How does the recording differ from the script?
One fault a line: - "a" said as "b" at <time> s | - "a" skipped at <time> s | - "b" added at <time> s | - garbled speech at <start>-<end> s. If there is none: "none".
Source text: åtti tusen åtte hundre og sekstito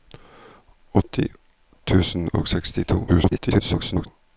- "åtte hundre" skipped at 2.3 s
- garbled speech at 3.1-4.1 s